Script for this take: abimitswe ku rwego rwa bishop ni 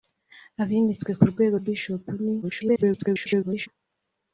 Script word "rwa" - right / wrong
wrong